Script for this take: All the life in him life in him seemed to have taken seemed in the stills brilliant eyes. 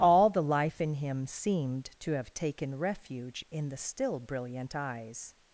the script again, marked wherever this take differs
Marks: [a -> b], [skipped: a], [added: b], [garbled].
All the life in him [skipped: life in him] seemed to have taken [seemed -> refuge] in the [stills -> still] brilliant eyes.